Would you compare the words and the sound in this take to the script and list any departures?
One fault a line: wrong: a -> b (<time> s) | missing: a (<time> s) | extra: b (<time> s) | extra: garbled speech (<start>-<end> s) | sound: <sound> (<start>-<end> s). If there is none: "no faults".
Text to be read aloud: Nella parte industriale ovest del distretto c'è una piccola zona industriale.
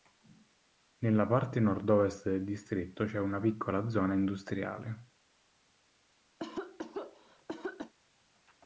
wrong: industriale -> nord (1.6 s)
sound: cough (6.4-7.9 s)